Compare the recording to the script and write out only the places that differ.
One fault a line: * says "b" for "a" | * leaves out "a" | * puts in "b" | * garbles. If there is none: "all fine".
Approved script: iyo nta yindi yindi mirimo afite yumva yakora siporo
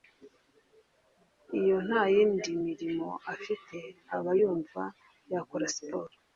* leaves out "yindi"
* puts in "aba"